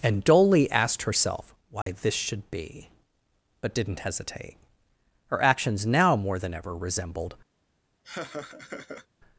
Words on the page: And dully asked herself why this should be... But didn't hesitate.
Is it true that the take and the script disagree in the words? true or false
true